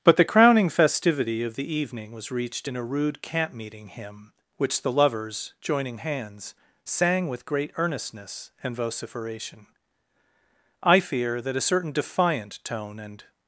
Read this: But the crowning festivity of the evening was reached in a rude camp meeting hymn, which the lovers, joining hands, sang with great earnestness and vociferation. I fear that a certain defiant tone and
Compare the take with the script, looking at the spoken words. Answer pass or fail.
pass